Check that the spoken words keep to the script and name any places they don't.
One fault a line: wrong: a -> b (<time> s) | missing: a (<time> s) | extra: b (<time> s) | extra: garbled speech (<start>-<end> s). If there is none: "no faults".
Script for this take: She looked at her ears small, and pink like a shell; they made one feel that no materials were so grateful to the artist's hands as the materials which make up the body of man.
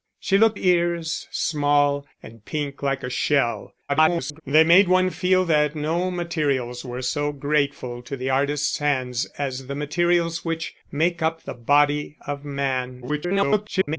missing: at her (0.6 s)
extra: garbled speech (3.9-4.4 s)
extra: garbled speech (13.0-14.0 s)